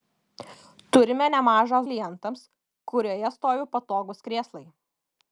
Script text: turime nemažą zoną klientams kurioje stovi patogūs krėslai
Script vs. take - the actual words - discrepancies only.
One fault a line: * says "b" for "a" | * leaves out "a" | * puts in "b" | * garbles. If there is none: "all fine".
* leaves out "zoną"